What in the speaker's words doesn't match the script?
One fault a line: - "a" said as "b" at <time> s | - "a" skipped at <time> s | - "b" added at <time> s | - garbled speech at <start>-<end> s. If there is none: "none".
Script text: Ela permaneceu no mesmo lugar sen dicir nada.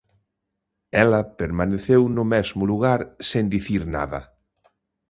none